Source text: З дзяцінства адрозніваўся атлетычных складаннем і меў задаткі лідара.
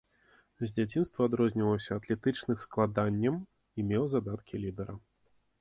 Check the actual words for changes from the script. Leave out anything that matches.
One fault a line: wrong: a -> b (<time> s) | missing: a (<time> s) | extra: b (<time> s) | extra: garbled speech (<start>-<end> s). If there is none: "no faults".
no faults